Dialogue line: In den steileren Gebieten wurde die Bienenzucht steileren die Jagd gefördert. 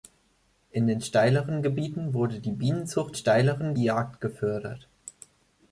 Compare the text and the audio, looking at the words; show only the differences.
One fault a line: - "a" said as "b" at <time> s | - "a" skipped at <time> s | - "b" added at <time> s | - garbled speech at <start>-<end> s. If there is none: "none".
none